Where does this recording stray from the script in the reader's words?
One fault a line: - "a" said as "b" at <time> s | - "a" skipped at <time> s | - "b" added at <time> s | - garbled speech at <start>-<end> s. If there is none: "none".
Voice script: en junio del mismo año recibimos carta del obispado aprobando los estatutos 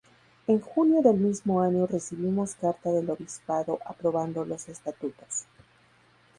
none